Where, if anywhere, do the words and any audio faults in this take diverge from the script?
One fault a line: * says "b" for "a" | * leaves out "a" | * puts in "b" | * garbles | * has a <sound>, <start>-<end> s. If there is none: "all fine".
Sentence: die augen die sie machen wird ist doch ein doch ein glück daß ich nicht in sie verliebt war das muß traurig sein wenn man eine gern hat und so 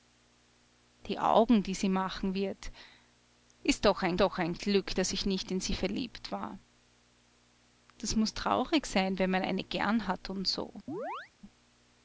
* has a chirp, 10.9-11.3 s